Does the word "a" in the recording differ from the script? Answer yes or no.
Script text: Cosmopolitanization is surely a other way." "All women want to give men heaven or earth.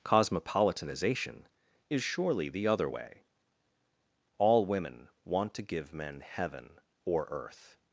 yes